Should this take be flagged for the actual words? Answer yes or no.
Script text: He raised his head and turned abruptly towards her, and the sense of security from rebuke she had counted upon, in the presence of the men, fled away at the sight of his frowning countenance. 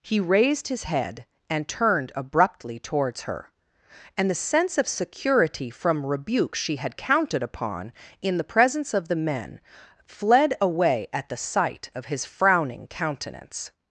no